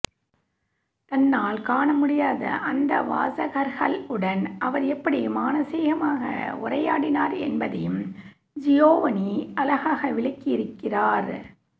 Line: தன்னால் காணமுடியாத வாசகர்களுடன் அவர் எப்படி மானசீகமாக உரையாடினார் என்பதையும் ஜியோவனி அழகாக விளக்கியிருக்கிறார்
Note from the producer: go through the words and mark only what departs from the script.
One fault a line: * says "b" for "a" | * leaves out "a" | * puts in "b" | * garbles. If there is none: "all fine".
* puts in "அந்த"